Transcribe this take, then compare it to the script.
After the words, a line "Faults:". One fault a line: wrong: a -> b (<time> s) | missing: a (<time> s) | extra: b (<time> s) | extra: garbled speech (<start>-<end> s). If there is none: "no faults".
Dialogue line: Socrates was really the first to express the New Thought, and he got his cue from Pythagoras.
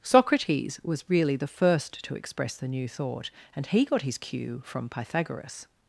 Socrates was really the first to express the New Thought, and he got his cue from Pythagoras.
Faults:
no faults